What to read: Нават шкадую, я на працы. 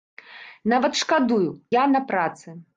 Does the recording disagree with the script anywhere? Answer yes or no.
no